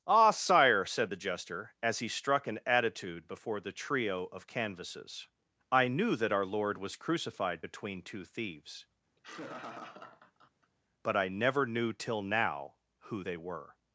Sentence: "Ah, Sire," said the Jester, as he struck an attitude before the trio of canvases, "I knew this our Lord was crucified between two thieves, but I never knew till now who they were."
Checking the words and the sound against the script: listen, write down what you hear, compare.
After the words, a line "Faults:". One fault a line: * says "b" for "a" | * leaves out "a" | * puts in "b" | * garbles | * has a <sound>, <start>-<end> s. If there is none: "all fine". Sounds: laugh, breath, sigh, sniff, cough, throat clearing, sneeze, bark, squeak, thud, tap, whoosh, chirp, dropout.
"Ah, Sire," said the Jester, as he struck an attitude before the trio of canvases, "I knew that our Lord was crucified between two thieves, but I never knew till now who they were."
Faults:
* says "that" for "this"
* has a laugh, 9.2-10.7 s